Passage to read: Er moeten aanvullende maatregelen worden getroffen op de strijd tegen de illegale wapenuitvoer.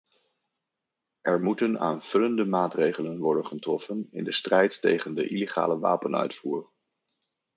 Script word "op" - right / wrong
wrong